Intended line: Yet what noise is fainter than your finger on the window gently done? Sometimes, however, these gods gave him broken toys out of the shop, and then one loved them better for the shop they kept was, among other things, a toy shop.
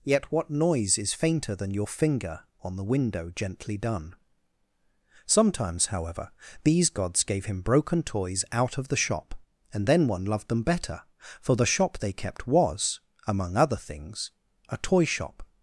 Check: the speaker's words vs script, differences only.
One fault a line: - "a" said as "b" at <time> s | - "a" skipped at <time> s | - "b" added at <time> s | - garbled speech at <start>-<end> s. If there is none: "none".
none